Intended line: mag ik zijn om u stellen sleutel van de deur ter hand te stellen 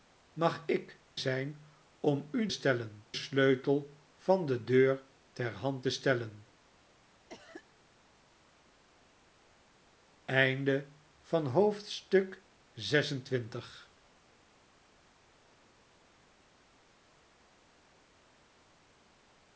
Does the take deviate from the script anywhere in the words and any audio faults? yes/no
yes